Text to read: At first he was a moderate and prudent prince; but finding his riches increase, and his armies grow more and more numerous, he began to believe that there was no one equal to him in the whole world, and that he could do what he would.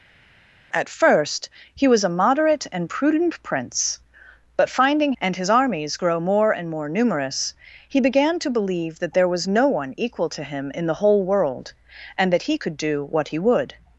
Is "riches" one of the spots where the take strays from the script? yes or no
yes